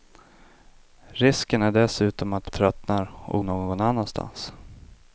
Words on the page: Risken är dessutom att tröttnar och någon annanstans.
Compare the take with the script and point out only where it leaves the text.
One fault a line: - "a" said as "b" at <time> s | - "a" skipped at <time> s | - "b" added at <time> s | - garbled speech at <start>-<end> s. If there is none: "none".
none